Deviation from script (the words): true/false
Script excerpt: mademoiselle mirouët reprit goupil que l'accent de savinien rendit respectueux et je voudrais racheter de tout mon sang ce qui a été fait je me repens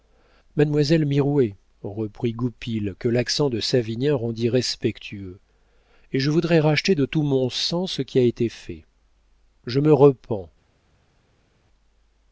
false